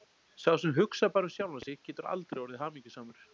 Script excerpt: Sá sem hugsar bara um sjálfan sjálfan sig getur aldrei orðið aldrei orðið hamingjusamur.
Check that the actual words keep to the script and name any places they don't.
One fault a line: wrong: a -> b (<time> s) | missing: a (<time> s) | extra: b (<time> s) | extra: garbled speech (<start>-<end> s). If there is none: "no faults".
missing: sjálfan (1.6 s)
missing: aldrei orðið (2.6 s)